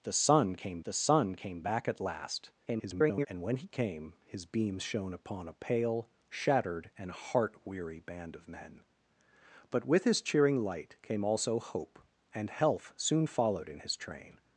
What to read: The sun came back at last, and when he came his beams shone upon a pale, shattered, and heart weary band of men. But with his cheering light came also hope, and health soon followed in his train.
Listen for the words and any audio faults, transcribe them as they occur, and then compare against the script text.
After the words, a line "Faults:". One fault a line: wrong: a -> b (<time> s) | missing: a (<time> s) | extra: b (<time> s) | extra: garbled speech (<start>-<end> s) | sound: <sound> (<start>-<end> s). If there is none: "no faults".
The sun came the sun came back at last, [garbled] and when he came his beams shone upon a pale, shattered, and heart weary band of men. But with his cheering light came also hope, and health soon followed in his train.
Faults:
extra: the sun came (0.8 s)
extra: garbled speech (2.7-3.3 s)